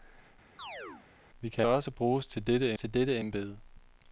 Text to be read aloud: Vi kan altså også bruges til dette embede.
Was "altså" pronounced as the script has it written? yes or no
no